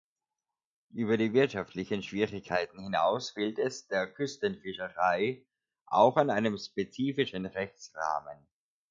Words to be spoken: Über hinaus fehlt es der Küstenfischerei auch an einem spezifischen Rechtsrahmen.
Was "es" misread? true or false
false